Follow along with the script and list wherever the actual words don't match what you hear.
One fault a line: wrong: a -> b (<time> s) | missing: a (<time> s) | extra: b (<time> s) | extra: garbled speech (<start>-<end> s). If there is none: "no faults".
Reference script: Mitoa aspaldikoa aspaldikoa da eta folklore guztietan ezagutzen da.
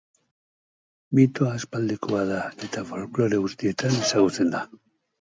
missing: aspaldikoa (2.2 s)